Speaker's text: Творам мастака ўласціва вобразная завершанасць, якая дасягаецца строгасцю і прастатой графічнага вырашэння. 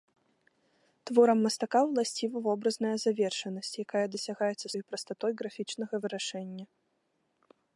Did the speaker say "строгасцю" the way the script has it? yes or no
no